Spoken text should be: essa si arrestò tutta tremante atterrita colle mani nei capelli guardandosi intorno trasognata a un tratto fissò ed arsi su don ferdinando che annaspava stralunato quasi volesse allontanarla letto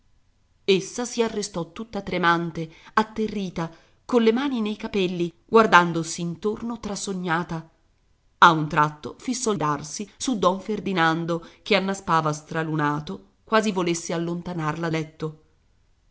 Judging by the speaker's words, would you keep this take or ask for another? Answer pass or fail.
pass